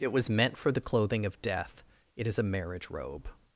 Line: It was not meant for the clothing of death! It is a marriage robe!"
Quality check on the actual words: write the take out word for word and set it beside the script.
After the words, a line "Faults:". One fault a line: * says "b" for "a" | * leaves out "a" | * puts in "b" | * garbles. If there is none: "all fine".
It was meant for the clothing of death! It is a marriage robe!"
Faults:
* leaves out "not"